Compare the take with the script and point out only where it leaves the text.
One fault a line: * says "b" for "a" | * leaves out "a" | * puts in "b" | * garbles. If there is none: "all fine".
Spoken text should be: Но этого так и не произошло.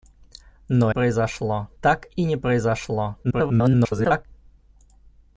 * says "произошло" for "этого"
* garbles